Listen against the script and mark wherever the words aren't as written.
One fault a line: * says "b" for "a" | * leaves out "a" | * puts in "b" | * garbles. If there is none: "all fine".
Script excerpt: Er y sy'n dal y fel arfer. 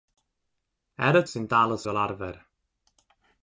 all fine